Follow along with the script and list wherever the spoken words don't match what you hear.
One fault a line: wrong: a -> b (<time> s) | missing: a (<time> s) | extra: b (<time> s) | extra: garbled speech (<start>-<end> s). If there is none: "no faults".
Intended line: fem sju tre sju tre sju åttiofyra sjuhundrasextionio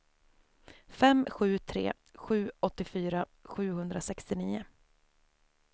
missing: tre sju (2.5 s)